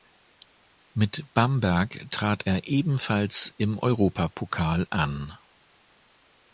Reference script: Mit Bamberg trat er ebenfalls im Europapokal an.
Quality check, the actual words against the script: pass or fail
pass